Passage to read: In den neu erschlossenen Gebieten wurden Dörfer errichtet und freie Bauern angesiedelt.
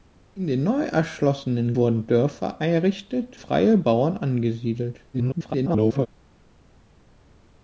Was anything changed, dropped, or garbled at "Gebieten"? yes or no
yes